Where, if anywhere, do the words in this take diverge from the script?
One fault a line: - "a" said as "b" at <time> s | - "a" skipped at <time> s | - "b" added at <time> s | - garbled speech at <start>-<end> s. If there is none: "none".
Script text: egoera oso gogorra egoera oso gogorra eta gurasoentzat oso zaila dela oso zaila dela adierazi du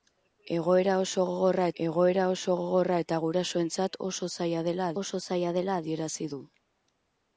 none